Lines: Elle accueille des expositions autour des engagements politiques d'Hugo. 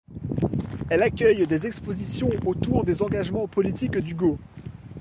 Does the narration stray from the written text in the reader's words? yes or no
no